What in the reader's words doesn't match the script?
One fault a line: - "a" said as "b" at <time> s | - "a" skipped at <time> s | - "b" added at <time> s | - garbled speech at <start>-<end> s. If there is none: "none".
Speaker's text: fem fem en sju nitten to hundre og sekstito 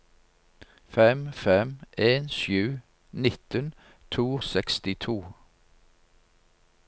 - "hundre og" skipped at 4.4 s